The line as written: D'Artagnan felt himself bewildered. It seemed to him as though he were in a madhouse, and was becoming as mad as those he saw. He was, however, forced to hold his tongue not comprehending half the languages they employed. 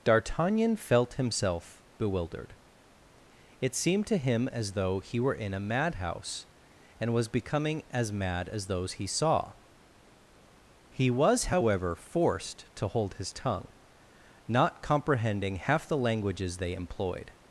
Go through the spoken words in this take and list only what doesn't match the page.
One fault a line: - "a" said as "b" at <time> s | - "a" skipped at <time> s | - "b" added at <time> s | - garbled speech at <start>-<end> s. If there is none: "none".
none